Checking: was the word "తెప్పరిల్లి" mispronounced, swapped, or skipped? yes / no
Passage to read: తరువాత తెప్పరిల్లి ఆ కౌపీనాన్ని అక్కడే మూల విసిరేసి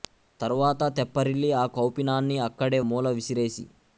no